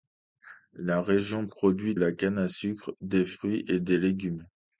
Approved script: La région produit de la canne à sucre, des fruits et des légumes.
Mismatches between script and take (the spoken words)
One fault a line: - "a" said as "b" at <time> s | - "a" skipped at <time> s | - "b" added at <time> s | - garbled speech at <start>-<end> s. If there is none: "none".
- "de" skipped at 1.9 s